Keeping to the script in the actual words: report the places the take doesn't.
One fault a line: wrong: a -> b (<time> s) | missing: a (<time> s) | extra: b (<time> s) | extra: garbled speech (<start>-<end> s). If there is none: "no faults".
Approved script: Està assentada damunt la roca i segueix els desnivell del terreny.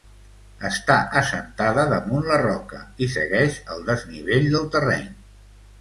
wrong: els -> el (3.8 s)